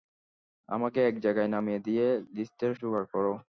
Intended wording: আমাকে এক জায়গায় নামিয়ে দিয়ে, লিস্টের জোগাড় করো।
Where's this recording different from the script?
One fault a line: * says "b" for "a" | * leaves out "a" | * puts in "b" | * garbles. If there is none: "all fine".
all fine